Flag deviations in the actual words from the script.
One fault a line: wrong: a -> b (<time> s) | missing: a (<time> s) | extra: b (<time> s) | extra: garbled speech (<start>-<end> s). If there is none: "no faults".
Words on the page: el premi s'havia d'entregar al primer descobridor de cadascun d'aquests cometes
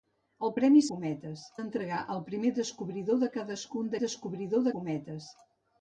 wrong: s'havia -> cometes (0.9 s)
wrong: d'aquests -> descobridor (4.0 s)